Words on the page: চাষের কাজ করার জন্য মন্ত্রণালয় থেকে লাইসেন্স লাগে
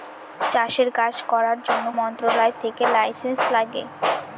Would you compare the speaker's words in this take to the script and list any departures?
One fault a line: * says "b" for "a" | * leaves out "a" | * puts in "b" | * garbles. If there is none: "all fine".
all fine